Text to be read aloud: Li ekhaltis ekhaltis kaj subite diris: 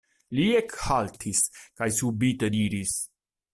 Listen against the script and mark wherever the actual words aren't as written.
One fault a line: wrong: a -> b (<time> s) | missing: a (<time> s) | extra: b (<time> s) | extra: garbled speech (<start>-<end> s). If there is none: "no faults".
missing: ekhaltis (1.4 s)